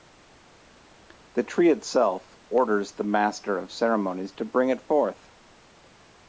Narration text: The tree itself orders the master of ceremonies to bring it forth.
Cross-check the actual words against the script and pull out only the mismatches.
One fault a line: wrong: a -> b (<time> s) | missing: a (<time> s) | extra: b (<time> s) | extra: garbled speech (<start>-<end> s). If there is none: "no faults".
no faults